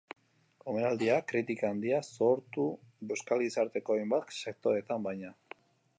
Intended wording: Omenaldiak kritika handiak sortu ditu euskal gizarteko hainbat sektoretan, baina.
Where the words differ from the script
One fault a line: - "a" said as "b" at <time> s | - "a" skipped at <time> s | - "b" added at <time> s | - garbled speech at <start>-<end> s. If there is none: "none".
- "ditu" skipped at 2.6 s